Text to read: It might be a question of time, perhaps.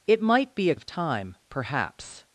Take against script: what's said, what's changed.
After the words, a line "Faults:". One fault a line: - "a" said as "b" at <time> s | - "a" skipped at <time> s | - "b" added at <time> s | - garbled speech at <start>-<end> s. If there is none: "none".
It might be a of time, perhaps.
Faults:
- "question" skipped at 0.8 s